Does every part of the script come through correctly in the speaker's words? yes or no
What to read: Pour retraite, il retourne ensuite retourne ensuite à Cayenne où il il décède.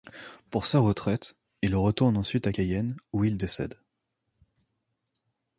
no